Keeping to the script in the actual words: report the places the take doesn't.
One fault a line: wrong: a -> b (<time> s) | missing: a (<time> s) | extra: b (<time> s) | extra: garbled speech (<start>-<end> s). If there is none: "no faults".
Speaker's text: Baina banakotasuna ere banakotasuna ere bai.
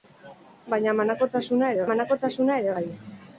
no faults